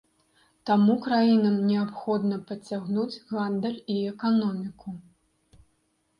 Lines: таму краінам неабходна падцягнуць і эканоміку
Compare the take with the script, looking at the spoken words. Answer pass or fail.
fail